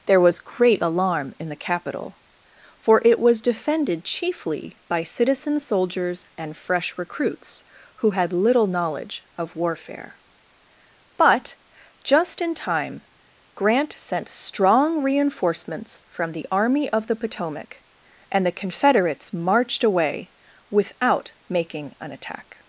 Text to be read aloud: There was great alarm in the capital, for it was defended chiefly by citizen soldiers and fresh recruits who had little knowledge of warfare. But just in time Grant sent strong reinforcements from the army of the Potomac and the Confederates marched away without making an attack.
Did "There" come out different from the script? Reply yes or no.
no